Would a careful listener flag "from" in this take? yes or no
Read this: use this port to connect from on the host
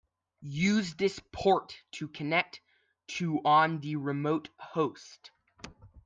yes